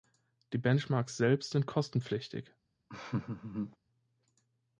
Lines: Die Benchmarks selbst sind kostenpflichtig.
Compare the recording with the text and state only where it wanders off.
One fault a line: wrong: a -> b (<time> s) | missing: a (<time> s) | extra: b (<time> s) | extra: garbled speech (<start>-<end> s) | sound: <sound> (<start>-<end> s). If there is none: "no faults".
sound: laugh (2.9-3.8 s)